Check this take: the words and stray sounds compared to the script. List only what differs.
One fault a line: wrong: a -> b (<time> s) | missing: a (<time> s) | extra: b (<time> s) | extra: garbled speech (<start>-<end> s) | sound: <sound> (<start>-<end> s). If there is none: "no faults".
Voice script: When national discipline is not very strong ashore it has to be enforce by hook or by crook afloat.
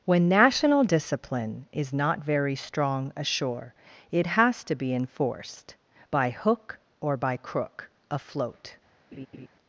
wrong: enforce -> enforced (4.9 s)
sound: laugh (9.1-9.5 s)